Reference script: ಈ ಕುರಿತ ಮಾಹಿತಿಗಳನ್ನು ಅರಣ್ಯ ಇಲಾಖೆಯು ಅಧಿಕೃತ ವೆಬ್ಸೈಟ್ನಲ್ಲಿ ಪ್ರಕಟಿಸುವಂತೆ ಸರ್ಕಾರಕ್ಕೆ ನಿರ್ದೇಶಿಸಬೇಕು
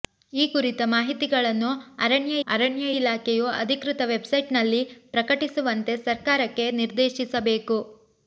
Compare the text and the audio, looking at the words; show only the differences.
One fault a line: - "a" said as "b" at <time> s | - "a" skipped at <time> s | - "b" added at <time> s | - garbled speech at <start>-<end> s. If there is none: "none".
- "ಅರಣ್ಯ" added at 2.5 s